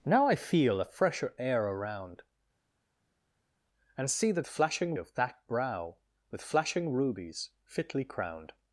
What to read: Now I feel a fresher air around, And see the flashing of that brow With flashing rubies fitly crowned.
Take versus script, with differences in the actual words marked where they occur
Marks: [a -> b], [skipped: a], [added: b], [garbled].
Now I feel a fresher air around, And see the flashing of that brow With flashing rubies fitly crowned.